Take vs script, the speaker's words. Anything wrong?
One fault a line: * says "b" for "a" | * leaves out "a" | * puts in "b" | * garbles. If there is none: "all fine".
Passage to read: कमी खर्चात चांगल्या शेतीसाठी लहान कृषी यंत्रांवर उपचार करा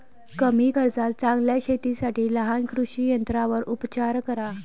all fine